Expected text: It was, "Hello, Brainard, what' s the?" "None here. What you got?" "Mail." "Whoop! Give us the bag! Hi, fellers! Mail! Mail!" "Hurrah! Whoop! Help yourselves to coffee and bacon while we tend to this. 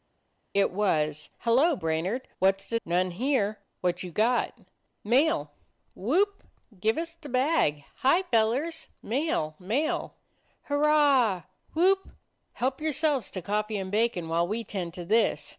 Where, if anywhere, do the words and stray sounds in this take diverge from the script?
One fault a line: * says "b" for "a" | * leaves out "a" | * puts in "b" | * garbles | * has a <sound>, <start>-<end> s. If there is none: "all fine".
all fine